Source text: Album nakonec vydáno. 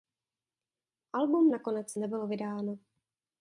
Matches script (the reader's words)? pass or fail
fail